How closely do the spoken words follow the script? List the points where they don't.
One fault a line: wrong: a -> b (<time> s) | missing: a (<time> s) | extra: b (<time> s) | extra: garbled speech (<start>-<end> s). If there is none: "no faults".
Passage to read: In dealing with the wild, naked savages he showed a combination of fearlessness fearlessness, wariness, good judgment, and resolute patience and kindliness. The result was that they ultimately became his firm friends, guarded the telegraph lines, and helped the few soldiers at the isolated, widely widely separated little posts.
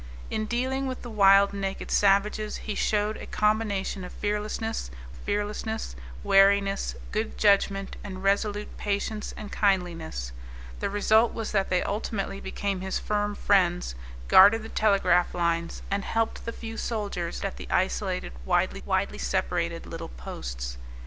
no faults